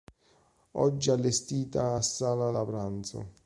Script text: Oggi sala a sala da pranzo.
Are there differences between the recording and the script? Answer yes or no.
yes